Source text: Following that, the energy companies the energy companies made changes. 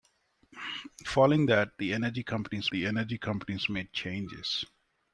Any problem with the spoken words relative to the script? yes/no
no